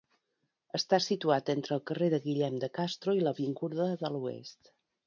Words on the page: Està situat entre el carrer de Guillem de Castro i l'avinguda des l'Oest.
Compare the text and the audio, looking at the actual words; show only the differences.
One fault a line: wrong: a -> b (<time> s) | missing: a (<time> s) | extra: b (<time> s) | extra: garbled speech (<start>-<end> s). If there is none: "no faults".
wrong: des -> de (4.0 s)